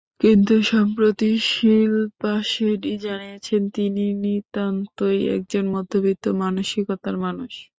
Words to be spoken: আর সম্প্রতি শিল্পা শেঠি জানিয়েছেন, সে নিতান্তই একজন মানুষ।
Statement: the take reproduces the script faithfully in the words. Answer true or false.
false